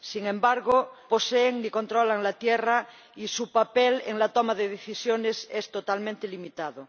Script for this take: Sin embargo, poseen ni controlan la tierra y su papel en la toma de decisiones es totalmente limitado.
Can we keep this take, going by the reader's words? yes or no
yes